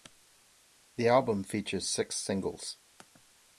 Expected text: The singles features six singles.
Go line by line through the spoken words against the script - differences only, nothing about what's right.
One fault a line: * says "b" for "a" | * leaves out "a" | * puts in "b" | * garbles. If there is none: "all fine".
* says "album" for "singles"